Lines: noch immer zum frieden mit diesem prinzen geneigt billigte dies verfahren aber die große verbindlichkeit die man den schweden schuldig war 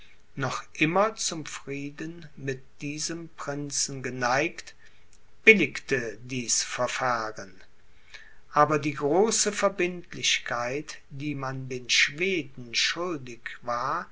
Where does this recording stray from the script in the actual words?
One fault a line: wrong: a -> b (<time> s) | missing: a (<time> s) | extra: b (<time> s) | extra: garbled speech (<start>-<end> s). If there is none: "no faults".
no faults